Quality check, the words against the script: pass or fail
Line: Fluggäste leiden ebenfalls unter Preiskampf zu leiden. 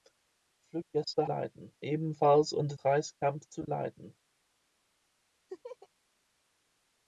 pass